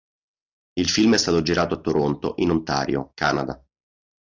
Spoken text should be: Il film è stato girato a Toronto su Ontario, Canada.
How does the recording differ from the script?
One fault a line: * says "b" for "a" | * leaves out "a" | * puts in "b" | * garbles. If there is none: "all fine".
* says "in" for "su"